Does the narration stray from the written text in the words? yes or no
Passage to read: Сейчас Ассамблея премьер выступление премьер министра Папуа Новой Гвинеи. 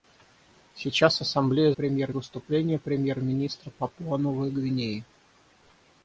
no